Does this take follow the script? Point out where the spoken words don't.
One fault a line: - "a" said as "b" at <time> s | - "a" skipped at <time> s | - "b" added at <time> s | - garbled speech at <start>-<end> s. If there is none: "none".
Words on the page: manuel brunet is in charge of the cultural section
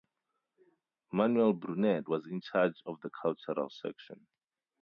- "is" said as "was" at 2.1 s